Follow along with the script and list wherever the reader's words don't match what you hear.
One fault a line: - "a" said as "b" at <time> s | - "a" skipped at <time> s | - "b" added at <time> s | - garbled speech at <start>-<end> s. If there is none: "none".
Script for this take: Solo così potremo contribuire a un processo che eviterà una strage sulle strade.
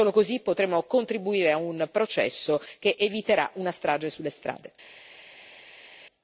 none